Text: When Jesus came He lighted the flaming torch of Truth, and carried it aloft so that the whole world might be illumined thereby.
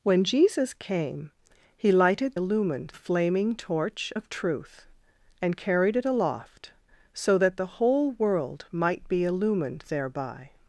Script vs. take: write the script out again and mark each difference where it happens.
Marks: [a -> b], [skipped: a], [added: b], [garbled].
When Jesus came He lighted [the -> illumined] flaming torch of Truth, and carried it aloft so that the whole world might be illumined thereby.